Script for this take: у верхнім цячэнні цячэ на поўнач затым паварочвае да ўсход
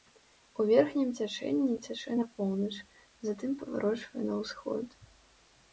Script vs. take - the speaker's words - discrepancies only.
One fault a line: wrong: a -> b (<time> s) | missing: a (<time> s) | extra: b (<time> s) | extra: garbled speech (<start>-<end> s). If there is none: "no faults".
wrong: да -> на (4.3 s)